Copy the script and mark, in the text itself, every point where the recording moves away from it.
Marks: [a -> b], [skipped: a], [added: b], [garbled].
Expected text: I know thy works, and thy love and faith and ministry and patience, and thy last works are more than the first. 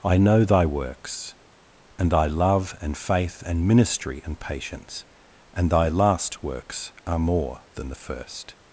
I know thy works, and thy love and faith and ministry and patience, and thy last works are more than the first.